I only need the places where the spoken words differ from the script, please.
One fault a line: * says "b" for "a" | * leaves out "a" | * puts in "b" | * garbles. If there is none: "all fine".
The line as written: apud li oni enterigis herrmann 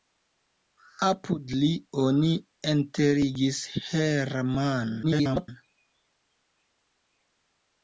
* garbles